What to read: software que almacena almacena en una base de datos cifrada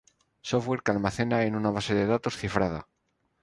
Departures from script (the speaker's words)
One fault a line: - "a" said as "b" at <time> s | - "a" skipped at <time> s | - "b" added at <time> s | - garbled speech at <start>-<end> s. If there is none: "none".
- "almacena" skipped at 1.4 s